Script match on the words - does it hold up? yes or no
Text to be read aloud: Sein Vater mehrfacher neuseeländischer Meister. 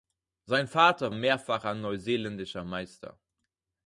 yes